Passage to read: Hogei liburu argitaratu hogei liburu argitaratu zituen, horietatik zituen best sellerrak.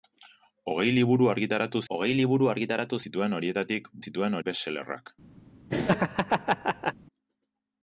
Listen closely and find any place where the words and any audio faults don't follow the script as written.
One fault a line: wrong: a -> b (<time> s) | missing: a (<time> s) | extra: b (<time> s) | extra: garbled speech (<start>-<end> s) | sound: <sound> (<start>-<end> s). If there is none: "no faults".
sound: laugh (5.7-6.9 s)